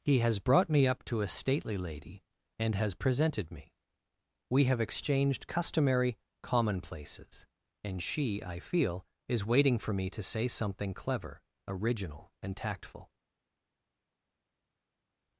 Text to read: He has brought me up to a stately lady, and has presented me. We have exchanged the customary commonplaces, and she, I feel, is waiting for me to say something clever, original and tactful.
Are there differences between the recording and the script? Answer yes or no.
yes